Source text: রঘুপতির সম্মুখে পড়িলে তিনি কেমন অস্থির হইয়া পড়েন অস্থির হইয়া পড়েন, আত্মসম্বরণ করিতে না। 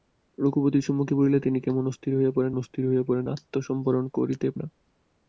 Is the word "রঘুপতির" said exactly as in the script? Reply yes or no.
yes